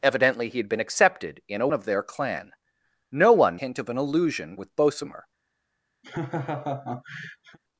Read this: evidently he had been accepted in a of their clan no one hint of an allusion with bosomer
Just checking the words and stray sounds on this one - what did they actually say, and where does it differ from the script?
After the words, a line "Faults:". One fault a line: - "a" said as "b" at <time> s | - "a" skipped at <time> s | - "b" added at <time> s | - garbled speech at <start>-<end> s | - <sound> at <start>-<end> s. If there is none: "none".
evidently he had been accepted in a of their clan no one hint of an allusion with bosomer
Faults:
- laugh at 6.0-7.6 s